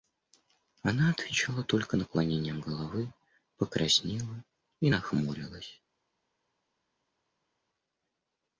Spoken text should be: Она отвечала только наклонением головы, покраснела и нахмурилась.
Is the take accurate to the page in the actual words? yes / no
yes